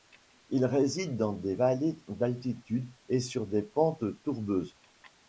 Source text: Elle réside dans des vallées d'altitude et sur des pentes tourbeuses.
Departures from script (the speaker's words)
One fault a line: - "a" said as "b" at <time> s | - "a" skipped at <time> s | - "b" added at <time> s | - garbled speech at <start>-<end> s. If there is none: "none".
- "Elle" said as "Il" at 0.5 s